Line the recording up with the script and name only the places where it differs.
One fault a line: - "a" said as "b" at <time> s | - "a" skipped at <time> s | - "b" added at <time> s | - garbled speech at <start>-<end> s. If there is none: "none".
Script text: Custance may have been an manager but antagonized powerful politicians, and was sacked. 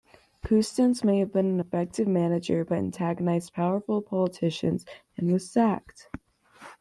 - "effective" added at 1.6 s